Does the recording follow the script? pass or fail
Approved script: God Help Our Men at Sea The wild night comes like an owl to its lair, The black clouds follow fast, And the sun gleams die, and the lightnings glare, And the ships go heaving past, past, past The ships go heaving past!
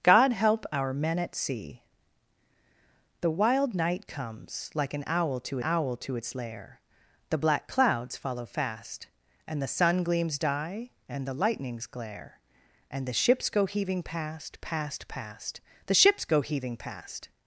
fail